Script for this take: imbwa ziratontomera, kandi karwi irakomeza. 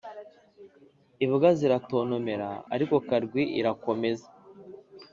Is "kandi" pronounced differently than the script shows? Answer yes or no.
yes